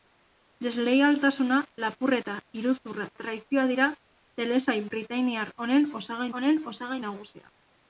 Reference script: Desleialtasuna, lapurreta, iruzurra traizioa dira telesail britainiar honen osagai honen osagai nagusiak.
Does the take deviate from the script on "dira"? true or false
false